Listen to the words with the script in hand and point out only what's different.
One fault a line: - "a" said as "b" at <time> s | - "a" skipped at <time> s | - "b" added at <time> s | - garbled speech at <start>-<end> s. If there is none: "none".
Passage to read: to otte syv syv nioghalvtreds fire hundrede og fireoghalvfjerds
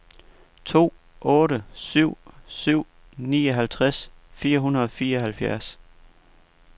none